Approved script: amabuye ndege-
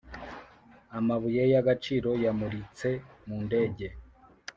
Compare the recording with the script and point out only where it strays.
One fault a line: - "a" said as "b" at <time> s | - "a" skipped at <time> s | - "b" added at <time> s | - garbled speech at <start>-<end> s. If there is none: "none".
- "y'agaciro yamuritse mu" added at 1.5 s